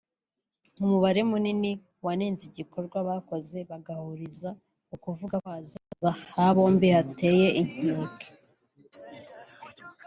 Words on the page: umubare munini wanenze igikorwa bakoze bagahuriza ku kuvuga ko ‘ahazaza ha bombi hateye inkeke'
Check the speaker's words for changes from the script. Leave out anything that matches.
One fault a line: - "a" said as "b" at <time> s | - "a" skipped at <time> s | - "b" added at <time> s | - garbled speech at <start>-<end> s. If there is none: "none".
none